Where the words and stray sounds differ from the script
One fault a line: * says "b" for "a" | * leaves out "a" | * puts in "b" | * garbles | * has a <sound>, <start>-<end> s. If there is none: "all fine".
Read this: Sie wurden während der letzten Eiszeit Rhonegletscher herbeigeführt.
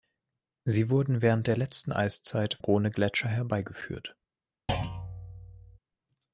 * has a thud, 4.7-5.8 s